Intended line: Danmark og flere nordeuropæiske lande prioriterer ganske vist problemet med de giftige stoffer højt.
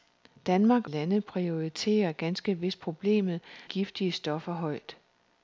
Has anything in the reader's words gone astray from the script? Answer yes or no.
yes